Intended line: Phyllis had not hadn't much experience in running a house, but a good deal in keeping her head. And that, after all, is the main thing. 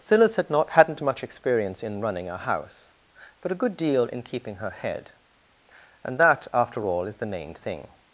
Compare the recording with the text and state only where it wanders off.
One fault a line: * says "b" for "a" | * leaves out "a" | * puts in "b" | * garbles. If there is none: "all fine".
all fine